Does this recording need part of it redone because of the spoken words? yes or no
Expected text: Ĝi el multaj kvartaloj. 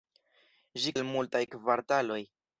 no